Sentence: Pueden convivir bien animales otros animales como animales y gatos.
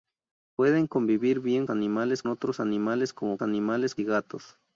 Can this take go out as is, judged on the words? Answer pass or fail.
pass